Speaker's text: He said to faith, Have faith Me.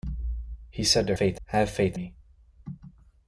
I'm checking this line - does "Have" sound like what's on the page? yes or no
yes